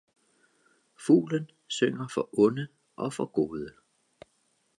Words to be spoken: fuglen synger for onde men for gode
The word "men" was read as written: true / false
false